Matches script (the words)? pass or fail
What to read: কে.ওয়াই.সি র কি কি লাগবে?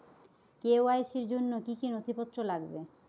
fail